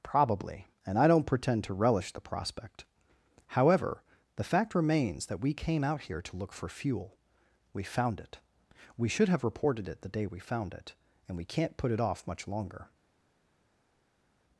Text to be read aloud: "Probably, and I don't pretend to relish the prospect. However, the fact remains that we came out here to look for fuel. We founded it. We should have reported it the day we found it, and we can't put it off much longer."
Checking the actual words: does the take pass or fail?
fail